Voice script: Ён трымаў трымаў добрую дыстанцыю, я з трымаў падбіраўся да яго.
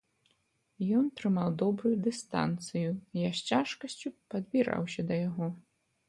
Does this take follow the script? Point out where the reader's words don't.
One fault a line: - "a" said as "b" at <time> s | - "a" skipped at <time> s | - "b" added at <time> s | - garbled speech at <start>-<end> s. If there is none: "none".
- "трымаў" skipped at 1.5 s
- "трымаў" said as "цяжкасцю" at 3.5 s